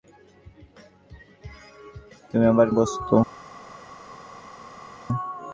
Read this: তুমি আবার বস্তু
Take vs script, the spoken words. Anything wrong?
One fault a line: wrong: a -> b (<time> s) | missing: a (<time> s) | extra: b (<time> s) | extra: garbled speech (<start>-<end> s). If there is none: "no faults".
no faults